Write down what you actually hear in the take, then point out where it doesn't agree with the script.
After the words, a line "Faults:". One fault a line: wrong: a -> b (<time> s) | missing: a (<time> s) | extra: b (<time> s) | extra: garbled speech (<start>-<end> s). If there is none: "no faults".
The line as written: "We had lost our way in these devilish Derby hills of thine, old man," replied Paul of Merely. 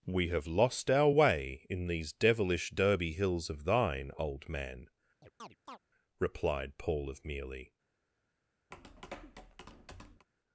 "We have lost our way in these devilish Derby hills of thine, old man," replied Paul of Merely.
Faults:
wrong: had -> have (0.3 s)